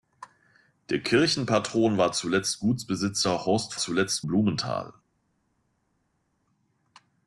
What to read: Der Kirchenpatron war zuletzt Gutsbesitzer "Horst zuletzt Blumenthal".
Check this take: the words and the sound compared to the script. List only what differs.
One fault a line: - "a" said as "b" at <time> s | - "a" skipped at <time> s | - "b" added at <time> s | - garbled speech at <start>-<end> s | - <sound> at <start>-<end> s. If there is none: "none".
none